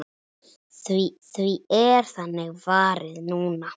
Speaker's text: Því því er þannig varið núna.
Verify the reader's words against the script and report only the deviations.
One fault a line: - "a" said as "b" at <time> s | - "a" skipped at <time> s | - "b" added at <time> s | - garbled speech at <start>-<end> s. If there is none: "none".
none